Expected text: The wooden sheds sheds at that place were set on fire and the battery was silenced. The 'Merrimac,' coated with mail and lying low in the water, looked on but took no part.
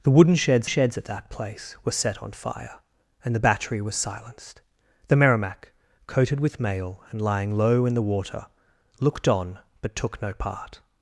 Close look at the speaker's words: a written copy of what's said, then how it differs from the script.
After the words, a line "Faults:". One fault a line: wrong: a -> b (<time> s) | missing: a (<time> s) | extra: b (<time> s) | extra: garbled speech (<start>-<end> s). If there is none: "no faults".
The wooden sheds sheds at that place were set on fire and the battery was silenced. The 'Merrimac,' coated with mail and lying low in the water, looked on but took no part.
Faults:
no faults